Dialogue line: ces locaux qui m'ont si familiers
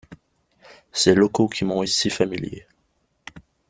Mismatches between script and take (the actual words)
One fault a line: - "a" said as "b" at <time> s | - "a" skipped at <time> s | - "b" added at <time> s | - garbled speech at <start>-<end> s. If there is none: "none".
none